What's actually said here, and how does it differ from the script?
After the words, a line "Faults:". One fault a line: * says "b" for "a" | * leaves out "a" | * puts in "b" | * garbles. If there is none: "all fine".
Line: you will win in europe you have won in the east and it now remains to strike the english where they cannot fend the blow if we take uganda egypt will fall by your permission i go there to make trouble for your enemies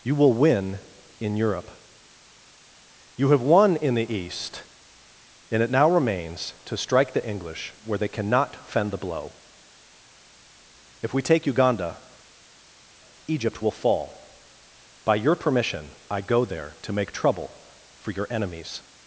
you will win in europe you have won in the east and it now remains to strike the english where they cannot fend the blow if we take uganda egypt will fall by your permission i go there to make trouble for your enemies
Faults:
all fine